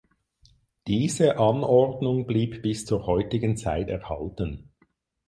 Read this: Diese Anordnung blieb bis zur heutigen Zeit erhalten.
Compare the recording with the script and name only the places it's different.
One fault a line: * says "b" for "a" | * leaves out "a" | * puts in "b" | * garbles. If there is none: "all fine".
all fine